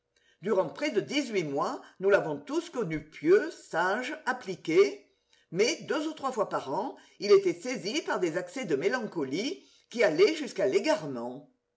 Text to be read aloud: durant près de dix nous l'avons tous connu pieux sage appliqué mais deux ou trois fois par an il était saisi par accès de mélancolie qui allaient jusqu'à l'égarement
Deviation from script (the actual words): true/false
true